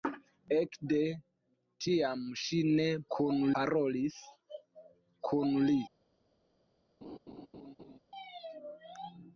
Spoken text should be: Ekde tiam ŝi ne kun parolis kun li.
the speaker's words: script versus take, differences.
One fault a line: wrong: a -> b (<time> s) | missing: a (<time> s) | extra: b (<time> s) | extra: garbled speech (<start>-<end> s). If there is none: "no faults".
no faults